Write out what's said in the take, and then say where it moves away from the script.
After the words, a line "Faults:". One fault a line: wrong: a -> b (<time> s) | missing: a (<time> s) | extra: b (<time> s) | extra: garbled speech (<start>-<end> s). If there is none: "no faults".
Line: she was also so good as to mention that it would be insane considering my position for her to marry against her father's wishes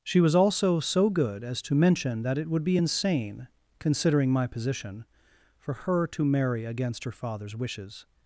she was also so good as to mention that it would be insane considering my position for her to marry against her father's wishes
Faults:
no faults